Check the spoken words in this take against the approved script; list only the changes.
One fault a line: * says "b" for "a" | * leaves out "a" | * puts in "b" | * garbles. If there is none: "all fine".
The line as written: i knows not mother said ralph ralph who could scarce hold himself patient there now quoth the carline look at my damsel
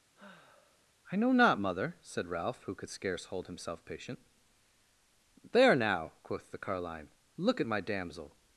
* says "know" for "knows"
* leaves out "ralph"